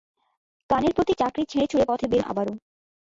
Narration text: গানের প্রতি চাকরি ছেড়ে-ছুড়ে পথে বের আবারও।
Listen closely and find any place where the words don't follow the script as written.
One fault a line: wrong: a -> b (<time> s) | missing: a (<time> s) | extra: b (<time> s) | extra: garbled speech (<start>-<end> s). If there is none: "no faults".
no faults